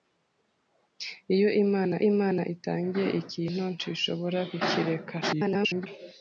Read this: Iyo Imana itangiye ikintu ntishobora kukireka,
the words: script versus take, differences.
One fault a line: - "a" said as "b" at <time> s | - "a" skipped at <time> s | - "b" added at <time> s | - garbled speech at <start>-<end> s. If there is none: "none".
- "Imana" added at 2.1 s
- garbled speech at 5.2-5.9 s